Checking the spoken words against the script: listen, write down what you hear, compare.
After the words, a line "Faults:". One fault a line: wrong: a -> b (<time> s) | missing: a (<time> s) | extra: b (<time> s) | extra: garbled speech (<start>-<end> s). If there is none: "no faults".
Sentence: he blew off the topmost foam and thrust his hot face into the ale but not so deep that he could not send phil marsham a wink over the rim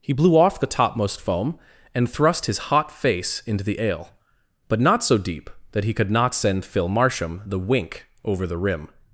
he blew off the topmost foam and thrust his hot face into the ale but not so deep that he could not send phil marsham the wink over the rim
Faults:
wrong: a -> the (7.4 s)